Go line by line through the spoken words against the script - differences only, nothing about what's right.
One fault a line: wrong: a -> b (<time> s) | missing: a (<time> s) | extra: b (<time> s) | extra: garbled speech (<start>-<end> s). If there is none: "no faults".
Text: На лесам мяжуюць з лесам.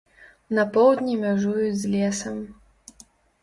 wrong: лесам -> поўдні (0.8 s)